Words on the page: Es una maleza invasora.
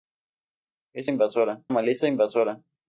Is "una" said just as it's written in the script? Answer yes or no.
no